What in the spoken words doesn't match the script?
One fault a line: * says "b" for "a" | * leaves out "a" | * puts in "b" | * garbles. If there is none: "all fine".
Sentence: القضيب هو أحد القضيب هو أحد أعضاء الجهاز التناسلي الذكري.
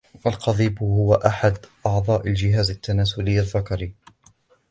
* leaves out "القضيب هو أحد"